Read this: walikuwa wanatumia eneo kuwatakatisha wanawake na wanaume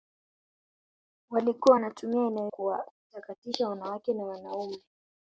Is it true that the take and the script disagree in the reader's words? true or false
false